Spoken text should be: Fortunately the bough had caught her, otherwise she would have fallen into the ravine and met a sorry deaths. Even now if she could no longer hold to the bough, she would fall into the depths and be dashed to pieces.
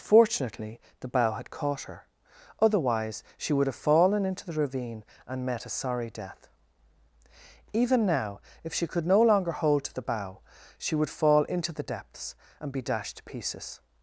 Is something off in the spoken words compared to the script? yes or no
yes